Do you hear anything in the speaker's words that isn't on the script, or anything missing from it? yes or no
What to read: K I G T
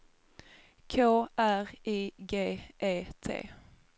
yes